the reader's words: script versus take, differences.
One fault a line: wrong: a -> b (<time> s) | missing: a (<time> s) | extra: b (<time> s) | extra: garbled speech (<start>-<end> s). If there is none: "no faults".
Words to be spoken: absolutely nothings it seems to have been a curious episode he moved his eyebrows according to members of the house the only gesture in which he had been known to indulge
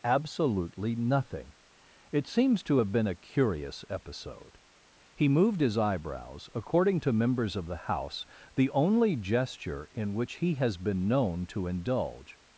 wrong: nothings -> nothing (0.9 s)
wrong: had -> has (10.5 s)